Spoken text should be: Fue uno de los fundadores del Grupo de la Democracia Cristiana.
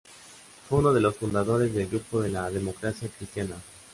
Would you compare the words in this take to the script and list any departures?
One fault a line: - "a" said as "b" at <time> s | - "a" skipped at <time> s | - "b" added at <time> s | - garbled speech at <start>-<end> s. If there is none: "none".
none